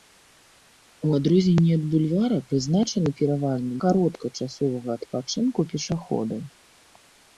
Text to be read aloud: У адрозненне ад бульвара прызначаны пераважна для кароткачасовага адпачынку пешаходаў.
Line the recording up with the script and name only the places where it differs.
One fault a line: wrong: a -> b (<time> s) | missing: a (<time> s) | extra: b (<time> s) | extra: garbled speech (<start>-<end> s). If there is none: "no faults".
missing: для (3.7 s)